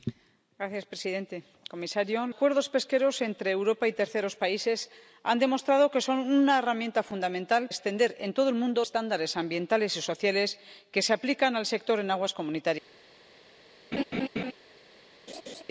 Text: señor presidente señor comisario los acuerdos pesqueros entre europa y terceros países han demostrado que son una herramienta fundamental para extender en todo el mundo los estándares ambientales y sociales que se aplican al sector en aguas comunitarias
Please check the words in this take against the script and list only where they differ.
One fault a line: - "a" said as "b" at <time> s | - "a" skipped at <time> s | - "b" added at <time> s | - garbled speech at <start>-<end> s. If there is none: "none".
- "los" skipped at 2.2 s
- "para" skipped at 7.6 s
- "los" skipped at 8.8 s